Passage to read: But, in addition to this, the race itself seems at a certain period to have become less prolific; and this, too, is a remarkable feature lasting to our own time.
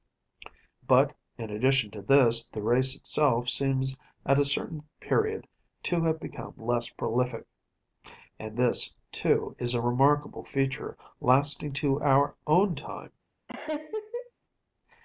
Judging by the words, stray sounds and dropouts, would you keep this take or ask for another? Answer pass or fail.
fail